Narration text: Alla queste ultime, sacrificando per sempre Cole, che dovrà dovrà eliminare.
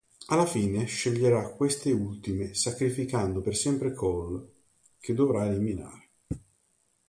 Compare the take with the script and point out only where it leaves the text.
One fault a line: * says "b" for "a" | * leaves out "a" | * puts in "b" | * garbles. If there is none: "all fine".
* puts in "fine sceglierà"
* leaves out "dovrà"